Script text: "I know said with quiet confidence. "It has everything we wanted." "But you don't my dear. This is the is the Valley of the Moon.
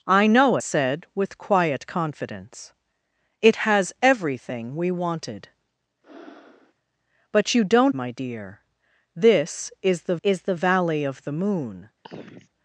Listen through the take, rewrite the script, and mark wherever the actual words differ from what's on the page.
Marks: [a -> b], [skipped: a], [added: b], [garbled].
"I know said with quiet confidence. "It has everything we wanted." "But you don't my dear. This is the is the Valley of the Moon.